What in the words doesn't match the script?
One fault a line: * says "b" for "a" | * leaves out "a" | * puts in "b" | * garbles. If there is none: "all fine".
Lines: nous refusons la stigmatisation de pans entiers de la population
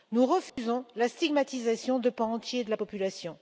all fine